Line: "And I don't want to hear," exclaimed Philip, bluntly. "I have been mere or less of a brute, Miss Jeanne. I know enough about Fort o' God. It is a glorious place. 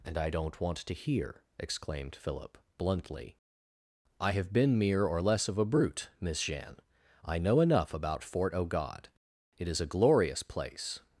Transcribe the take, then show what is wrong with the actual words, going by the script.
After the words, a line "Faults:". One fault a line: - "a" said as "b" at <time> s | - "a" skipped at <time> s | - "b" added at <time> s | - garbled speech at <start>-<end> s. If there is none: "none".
"And I don't want to hear," exclaimed Philip, bluntly. "I have been mere or less of a brute, Miss Jeanne. I know enough about Fort o' God. It is a glorious place.
Faults:
none